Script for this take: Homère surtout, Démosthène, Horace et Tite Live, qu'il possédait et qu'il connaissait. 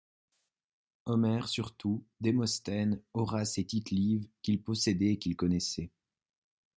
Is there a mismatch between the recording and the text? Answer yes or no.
no